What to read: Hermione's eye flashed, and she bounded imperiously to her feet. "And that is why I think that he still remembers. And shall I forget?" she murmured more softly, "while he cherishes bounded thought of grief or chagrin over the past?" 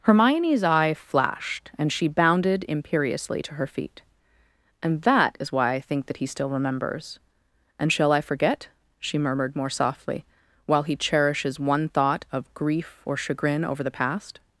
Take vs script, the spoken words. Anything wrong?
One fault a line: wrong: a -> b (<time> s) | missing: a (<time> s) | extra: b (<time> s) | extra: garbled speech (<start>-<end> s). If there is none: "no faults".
wrong: bounded -> one (11.6 s)